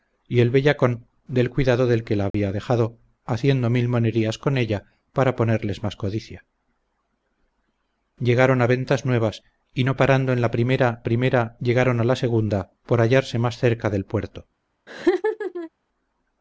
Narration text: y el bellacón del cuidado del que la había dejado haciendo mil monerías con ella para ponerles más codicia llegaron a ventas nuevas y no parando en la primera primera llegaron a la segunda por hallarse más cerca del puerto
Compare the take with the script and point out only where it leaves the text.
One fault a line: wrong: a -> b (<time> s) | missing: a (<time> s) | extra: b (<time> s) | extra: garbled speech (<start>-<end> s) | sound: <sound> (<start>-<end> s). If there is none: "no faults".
sound: dropout (2.3-2.3 s)
sound: laugh (14.9-15.7 s)